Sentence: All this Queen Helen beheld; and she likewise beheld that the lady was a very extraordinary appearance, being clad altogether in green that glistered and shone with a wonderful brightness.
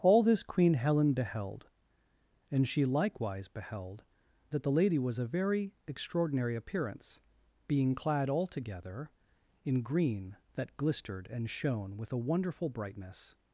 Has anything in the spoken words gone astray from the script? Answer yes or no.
no